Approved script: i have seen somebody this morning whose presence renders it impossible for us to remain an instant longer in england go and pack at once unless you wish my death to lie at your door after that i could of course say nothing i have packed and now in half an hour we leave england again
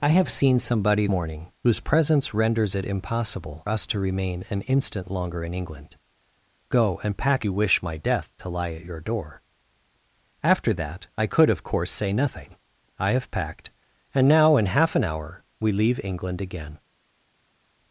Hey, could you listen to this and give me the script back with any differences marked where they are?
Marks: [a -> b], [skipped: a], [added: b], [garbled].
i have seen somebody [skipped: this] morning whose presence renders it impossible [skipped: for] us to remain an instant longer in england go and pack [skipped: at once unless] you wish my death to lie at your door after that i could of course say nothing i have packed and now in half an hour we leave england again